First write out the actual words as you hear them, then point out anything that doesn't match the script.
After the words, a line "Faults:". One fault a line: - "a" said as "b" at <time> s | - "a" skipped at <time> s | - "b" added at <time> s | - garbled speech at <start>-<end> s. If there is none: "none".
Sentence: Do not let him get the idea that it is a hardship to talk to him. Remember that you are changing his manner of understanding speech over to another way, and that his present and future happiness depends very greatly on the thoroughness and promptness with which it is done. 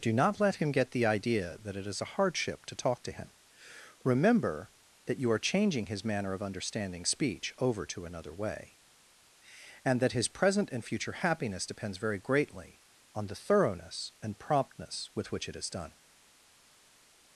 Do not let him get the idea that it is a hardship to talk to him. Remember that you are changing his manner of understanding speech over to another way, and that his present and future happiness depends very greatly on the thoroughness and promptness with which it is done.
Faults:
none